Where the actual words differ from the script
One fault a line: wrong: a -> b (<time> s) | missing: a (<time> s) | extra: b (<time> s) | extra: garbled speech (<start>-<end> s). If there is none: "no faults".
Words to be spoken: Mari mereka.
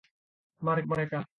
no faults